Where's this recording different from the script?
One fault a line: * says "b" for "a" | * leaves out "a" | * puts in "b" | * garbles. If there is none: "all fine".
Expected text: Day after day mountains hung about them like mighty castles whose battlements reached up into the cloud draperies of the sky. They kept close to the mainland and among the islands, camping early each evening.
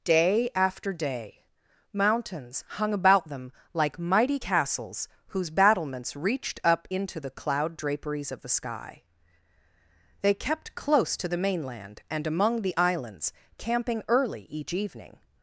all fine